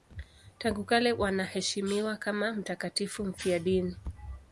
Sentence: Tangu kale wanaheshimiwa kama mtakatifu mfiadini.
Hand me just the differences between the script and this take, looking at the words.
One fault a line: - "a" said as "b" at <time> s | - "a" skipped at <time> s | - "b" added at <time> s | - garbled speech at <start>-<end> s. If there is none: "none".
none